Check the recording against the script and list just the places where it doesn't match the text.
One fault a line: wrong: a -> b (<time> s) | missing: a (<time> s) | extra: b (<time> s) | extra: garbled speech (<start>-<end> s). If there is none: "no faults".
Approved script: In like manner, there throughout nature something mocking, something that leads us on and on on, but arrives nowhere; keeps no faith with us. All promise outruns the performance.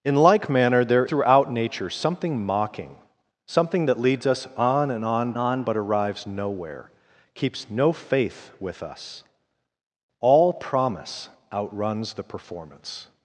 no faults